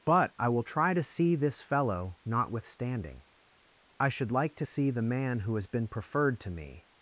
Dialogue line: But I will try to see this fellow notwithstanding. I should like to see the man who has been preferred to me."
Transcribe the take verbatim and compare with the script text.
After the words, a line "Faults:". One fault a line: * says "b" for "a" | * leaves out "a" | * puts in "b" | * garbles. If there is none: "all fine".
But I will try to see this fellow notwithstanding. I should like to see the man who has been preferred to me."
Faults:
all fine